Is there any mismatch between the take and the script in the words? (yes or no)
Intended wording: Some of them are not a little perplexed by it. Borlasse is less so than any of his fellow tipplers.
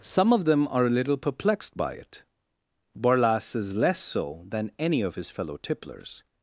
yes